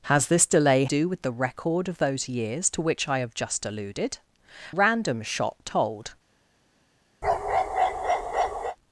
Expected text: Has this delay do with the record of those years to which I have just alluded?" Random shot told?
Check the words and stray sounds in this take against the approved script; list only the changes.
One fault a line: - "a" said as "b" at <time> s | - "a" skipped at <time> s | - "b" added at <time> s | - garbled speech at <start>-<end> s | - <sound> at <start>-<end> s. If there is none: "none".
- bark at 7.2-8.8 s